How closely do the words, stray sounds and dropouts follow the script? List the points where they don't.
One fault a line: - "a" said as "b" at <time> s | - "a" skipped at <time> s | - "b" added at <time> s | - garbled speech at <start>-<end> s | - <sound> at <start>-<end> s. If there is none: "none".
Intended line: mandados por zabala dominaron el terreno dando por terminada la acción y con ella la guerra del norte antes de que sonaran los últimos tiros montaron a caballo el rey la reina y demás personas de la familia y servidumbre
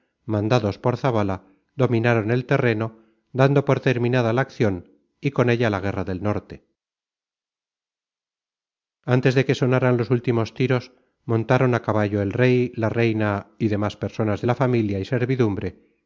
none